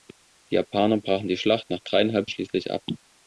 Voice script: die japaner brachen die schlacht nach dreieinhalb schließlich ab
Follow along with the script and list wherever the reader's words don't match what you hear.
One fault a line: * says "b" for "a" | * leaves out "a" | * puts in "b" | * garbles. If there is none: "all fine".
all fine